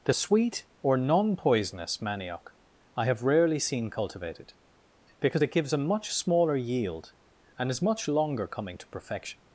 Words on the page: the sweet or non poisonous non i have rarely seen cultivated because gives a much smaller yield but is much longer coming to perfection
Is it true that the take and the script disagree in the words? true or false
true